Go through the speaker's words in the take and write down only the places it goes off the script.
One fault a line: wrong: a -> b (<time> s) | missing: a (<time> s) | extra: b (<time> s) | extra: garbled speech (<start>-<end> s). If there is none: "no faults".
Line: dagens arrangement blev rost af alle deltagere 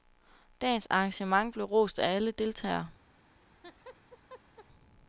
no faults